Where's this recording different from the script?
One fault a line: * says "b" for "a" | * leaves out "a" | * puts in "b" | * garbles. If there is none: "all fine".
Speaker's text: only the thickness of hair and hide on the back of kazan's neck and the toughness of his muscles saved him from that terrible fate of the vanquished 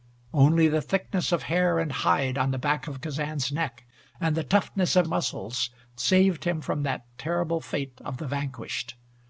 * leaves out "his"